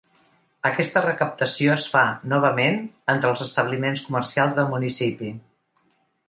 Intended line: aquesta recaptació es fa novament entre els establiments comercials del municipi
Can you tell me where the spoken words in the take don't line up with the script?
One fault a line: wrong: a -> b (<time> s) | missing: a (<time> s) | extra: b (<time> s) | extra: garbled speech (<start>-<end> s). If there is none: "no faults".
no faults